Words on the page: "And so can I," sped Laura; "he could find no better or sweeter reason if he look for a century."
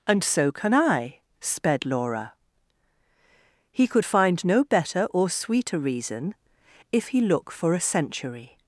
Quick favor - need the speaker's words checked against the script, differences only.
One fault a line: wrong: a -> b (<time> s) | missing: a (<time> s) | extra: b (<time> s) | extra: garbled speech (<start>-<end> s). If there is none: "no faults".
no faults